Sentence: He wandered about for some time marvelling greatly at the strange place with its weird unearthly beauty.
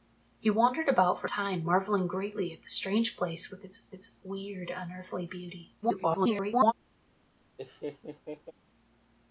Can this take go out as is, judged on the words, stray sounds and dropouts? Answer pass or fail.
fail